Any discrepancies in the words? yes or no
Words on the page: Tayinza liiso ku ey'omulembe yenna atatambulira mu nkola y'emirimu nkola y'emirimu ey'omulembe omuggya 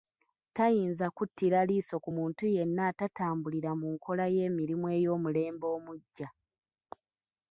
yes